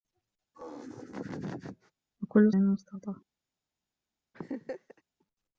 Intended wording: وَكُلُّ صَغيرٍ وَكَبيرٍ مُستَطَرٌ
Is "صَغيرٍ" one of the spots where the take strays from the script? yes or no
yes